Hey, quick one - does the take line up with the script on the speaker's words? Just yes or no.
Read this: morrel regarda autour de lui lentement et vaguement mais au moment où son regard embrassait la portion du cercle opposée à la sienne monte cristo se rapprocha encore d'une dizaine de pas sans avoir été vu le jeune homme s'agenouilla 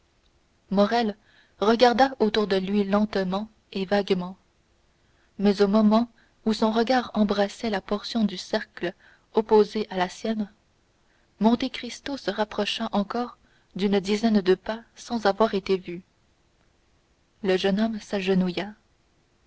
yes